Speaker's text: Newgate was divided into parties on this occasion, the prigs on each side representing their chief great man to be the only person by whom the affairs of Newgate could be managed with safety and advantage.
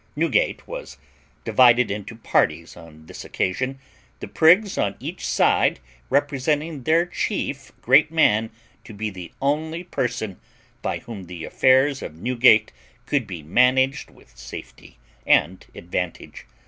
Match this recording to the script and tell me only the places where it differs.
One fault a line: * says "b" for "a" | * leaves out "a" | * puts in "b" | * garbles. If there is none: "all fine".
all fine